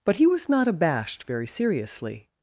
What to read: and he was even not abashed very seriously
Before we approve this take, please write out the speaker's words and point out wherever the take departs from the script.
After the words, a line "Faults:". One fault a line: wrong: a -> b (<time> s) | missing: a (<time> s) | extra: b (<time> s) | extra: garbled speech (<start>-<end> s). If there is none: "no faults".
but he was not abashed very seriously
Faults:
wrong: and -> but (0.0 s)
missing: even (0.5 s)